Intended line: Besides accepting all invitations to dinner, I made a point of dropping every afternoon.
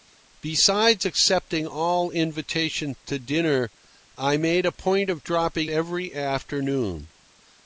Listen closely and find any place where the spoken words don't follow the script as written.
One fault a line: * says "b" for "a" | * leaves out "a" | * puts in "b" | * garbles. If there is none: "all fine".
all fine